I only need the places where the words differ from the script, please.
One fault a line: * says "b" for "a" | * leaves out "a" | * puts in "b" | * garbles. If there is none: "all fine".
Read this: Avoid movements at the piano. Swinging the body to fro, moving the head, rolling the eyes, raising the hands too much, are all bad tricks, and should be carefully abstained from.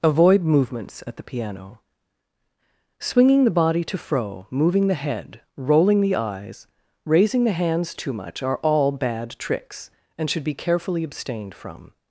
all fine